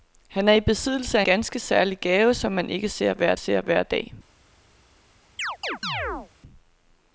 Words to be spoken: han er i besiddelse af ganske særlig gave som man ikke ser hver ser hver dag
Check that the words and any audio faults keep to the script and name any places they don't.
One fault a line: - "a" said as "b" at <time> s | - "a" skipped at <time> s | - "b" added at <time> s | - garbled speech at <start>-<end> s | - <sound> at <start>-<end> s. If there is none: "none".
- chirp at 5.4-6.3 s